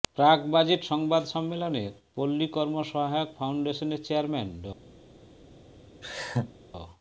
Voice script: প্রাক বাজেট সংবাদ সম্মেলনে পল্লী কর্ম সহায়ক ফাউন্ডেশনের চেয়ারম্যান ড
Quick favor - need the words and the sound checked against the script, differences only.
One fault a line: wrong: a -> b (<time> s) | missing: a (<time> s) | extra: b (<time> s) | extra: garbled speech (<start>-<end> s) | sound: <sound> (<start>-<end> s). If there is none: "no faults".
sound: laugh (6.0-6.5 s)